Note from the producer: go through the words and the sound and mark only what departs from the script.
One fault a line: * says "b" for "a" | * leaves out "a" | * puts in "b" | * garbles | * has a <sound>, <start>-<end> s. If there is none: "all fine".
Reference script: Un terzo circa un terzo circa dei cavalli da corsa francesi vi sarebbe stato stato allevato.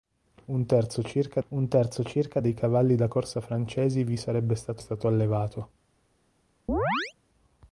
* has a chirp, 6.7-7.1 s